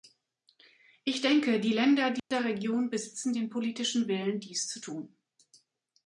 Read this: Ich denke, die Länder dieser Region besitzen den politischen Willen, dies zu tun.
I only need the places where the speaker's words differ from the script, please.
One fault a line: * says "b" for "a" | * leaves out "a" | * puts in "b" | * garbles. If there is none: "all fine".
all fine